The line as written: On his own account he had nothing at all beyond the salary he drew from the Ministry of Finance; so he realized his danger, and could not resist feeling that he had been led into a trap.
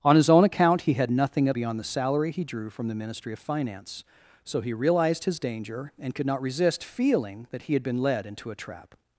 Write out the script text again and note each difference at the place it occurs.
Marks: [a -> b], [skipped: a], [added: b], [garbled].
On his own account he had nothing at [skipped: all] beyond the salary he drew from the Ministry of Finance; so he realized his danger, and could not resist feeling that he had been led into a trap.